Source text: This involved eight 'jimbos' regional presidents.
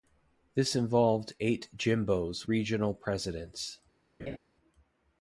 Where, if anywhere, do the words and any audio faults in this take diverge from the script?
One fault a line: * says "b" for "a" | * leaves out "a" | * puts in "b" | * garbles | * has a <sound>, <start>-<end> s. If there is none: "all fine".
* has a laugh, 4.2-4.4 s